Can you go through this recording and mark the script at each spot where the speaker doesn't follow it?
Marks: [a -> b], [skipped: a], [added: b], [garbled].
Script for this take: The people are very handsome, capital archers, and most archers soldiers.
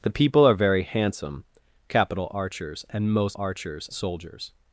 The people are very handsome, capital archers, and most archers soldiers.